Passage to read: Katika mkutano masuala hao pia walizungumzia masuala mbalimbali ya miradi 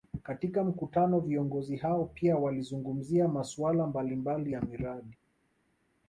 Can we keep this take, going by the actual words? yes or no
no